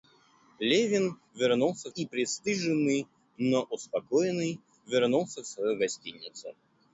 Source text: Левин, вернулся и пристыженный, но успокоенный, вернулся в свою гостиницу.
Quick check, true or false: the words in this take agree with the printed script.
true